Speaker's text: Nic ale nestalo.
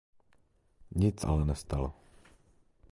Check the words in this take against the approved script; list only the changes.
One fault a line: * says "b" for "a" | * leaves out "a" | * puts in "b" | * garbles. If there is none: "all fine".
all fine